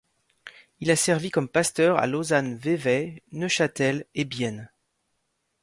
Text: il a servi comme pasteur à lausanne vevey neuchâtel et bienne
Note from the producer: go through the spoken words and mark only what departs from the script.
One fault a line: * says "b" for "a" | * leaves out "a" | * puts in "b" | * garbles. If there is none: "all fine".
all fine